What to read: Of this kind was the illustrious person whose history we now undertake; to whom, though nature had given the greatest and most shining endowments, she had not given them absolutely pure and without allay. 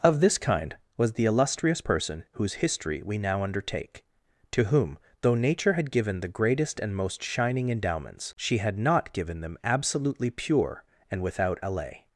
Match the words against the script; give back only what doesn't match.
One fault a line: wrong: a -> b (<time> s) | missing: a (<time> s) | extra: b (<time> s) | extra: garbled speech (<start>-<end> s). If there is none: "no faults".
no faults